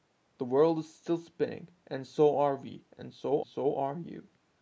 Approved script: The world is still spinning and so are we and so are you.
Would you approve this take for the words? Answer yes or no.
no